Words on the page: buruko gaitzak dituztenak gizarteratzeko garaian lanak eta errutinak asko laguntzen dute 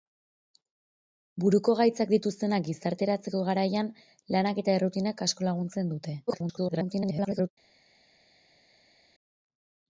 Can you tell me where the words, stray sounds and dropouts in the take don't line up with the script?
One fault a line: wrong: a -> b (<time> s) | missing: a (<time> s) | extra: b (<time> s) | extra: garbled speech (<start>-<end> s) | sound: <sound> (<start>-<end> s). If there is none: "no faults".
extra: garbled speech (6.3-7.5 s)